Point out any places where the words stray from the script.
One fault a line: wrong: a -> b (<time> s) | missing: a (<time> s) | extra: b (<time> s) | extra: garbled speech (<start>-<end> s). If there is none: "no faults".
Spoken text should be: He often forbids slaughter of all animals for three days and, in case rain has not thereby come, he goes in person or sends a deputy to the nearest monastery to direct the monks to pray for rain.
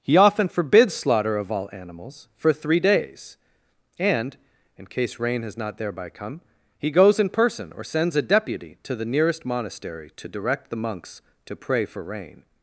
no faults